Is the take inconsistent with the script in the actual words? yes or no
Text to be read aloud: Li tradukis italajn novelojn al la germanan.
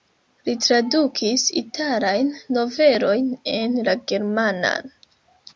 yes